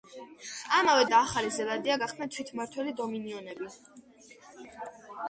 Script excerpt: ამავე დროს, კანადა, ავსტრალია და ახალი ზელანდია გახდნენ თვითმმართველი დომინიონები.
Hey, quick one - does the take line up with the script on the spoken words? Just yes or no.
no